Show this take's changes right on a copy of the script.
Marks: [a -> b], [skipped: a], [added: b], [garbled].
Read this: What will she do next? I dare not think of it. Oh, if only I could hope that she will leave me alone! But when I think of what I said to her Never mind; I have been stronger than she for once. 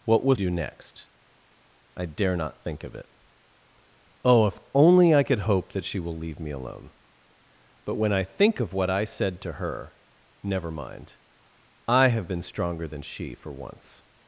What will [skipped: she] do next? I dare not think of it. Oh, if only I could hope that she will leave me alone! But when I think of what I said to her Never mind; I have been stronger than she for once.